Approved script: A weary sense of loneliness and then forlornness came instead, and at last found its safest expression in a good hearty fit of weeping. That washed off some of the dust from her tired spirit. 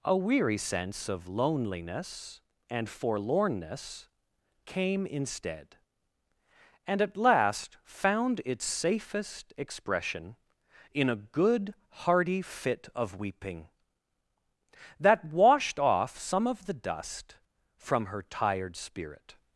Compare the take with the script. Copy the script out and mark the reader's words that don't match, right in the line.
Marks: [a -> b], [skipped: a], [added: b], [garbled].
A weary sense of loneliness and [skipped: then] forlornness came instead, and at last found its safest expression in a good hearty fit of weeping. That washed off some of the dust from her tired spirit.